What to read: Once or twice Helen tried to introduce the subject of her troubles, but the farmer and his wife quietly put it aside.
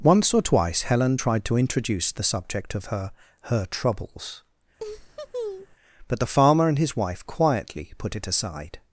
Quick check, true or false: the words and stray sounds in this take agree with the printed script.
false